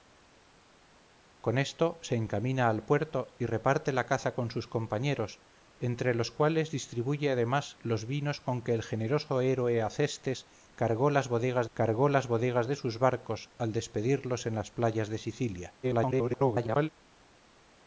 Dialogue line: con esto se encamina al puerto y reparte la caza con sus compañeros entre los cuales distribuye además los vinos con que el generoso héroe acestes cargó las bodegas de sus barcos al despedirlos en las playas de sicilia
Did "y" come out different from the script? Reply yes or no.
no